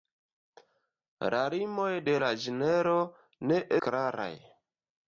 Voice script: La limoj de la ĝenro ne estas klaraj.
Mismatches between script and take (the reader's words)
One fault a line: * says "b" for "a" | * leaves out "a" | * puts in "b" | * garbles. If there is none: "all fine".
* leaves out "estas"